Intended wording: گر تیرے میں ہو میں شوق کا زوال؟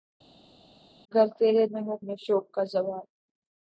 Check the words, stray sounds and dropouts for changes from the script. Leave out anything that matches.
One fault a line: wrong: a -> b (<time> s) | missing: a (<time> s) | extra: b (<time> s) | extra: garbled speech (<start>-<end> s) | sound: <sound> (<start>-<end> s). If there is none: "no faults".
no faults